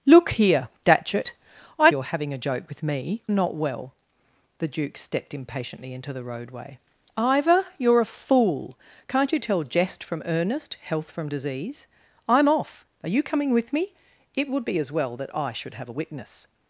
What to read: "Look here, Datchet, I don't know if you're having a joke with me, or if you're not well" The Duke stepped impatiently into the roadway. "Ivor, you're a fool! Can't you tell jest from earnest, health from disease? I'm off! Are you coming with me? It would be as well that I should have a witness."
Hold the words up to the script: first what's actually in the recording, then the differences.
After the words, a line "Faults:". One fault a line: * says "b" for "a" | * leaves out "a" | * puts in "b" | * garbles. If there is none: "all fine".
"Look here, Datchet, I you're having a joke with me, not well" The Duke stepped impatiently into the roadway. "Ivor, you're a fool! Can't you tell jest from earnest, health from disease? I'm off! Are you coming with me? It would be as well that I should have a witness."
Faults:
* leaves out "don't know if"
* leaves out "or if you're"